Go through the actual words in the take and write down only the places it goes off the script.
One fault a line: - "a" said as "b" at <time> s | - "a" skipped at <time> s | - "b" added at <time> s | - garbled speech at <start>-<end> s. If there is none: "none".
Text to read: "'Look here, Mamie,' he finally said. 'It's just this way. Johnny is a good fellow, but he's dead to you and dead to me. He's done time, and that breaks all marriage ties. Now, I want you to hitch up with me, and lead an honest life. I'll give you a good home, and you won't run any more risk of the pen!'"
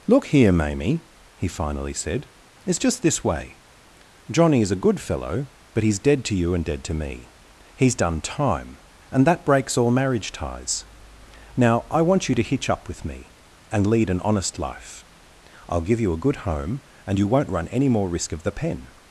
none